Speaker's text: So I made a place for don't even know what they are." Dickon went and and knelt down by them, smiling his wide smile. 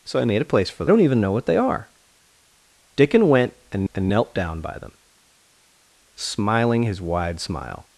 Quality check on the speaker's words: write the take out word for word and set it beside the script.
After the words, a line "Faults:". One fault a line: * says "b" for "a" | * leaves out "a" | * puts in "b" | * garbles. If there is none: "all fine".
So I made a place for don't even know what they are." Dickon went and and knelt down by them, smiling his wide smile.
Faults:
all fine